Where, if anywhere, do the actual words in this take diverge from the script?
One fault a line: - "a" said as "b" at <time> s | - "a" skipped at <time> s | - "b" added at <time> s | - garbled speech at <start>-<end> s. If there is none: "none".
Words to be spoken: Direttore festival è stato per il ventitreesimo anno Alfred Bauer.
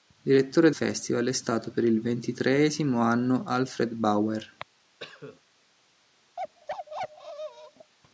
none